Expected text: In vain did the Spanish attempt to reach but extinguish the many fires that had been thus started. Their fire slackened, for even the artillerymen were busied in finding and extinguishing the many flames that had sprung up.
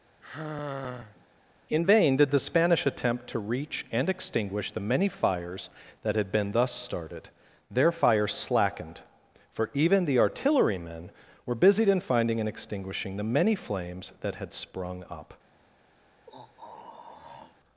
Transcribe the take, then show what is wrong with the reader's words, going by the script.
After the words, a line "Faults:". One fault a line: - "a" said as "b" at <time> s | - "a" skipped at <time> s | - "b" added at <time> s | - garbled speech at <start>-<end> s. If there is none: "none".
In vain did the Spanish attempt to reach and extinguish the many fires that had been thus started. Their fire slackened, for even the artillerymen were busied in finding and extinguishing the many flames that had sprung up.
Faults:
- "but" said as "and" at 3.9 s